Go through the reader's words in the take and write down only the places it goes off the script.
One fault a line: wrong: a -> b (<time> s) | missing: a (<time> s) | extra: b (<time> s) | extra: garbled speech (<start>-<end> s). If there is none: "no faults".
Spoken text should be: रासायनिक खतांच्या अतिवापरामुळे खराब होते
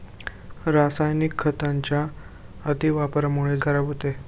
no faults